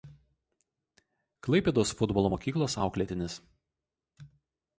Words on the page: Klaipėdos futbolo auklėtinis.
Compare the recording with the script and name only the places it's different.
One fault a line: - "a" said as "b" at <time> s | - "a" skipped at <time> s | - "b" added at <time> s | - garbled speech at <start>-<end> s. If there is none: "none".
- "mokyklos" added at 2.3 s